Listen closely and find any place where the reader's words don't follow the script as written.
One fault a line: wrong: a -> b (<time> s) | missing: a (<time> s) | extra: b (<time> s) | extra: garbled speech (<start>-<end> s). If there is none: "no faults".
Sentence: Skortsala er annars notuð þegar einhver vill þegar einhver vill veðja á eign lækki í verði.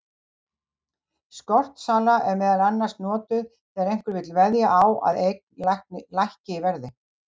extra: meðal (2.4 s)
missing: þegar einhver vill (4.3 s)
extra: að (5.1 s)